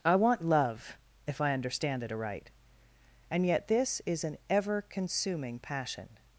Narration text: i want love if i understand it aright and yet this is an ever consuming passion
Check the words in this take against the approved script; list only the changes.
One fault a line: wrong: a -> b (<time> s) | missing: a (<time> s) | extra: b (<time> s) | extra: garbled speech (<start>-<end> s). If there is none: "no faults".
no faults